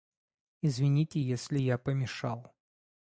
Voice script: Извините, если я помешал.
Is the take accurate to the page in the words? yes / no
yes